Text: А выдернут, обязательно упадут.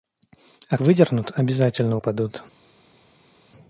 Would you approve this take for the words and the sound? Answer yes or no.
yes